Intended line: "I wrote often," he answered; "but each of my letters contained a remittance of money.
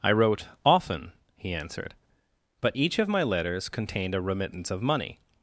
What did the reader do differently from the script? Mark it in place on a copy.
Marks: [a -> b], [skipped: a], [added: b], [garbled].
"I wrote often," he answered; "but each of my letters contained a remittance of money.